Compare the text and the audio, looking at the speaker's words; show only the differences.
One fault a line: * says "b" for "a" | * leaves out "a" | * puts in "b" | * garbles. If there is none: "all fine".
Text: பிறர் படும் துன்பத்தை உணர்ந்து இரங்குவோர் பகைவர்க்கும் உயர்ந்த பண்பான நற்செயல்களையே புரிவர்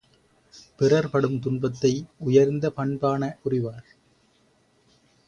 * leaves out "உணர்ந்து இரங்குவோர் பகைவர்க்கும்"
* leaves out "நற்செயல்களையே"